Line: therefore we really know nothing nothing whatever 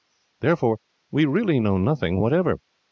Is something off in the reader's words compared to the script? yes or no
yes